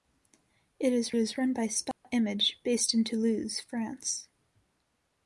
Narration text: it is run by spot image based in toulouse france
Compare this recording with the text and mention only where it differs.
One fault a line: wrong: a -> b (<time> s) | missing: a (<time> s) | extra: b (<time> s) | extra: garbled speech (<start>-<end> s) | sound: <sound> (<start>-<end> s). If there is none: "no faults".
extra: is (1.2 s)
sound: dropout (1.9-2.0 s)